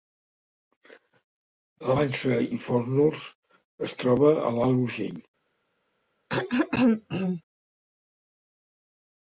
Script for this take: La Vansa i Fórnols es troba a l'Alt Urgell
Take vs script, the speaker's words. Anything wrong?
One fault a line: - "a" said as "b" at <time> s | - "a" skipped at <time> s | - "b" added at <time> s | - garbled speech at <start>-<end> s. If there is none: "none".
none